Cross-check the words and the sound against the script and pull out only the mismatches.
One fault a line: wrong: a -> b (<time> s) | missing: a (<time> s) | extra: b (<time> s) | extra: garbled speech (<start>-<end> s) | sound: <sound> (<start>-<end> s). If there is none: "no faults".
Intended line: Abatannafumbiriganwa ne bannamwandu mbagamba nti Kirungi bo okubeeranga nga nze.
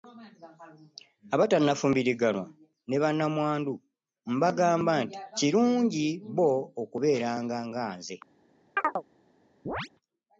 sound: chirp (8.8-9.0 s)
sound: chirp (9.7-9.9 s)